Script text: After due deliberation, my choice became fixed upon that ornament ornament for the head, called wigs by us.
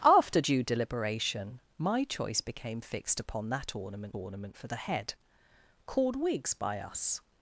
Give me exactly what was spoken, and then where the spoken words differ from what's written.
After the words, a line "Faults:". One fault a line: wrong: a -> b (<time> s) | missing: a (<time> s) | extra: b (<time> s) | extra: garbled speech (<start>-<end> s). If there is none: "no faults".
After due deliberation, my choice became fixed upon that ornament ornament for the head, called wigs by us.
Faults:
no faults